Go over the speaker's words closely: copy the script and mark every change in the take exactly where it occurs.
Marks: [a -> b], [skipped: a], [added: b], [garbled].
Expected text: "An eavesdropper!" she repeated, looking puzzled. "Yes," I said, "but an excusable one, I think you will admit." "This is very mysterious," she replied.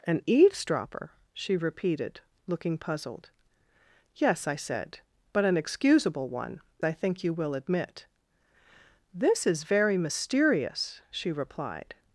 "An eavesdropper!" she repeated, looking puzzled. "Yes," I said, "but an excusable one, I think you will admit." "This is very mysterious," she replied.